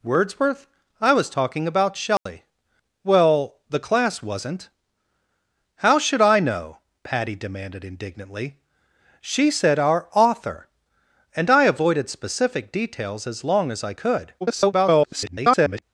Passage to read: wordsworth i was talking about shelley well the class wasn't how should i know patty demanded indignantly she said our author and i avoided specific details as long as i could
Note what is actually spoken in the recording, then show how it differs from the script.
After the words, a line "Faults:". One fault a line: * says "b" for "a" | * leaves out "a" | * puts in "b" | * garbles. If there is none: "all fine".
wordsworth i was talking about shelley well the class wasn't how should i know patty demanded indignantly she said our author and i avoided specific details as long as i could [garbled]
Faults:
* garbles